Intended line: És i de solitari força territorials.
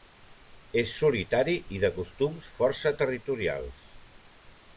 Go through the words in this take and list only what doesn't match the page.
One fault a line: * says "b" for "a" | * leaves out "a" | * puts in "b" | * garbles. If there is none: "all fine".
* puts in "solitari"
* says "costums" for "solitari"